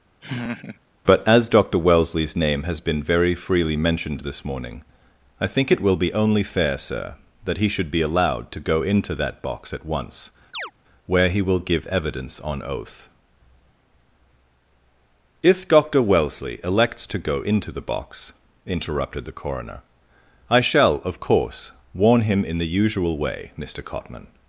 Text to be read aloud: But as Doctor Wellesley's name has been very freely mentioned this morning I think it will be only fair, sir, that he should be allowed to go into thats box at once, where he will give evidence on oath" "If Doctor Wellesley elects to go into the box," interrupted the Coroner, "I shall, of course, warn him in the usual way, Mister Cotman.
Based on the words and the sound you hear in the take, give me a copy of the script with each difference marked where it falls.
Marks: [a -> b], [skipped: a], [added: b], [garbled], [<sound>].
[laugh] But as Doctor Wellesley's name has been very freely mentioned this morning I think it will be only fair, sir, that he should be allowed to go into [thats -> that] box at once, [chirp] where he will give evidence on oath" "If Doctor Wellesley elects to go into the box," interrupted the Coroner, "I shall, of course, warn him in the usual way, Mister Cotman.